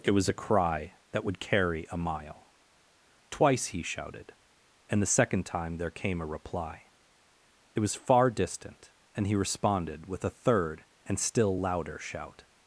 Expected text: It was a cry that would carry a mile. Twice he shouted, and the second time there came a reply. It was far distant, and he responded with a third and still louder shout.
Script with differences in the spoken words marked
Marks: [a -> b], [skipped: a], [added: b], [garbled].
It was a cry that would carry a mile. Twice he shouted, and the second time there came a reply. It was far distant, and he responded with a third and still louder shout.